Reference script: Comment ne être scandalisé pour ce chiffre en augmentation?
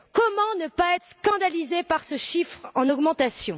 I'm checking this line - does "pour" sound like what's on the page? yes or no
no